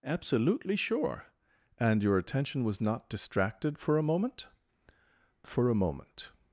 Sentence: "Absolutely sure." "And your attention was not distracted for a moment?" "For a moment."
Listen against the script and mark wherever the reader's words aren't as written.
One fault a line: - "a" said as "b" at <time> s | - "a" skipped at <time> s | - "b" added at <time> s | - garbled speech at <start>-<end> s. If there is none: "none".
none